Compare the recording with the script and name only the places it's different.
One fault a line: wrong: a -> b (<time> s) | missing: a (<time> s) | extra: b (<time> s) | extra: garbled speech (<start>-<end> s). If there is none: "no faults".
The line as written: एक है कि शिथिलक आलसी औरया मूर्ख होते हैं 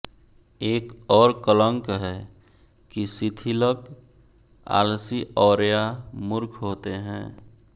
extra: और कलंक (1.1 s)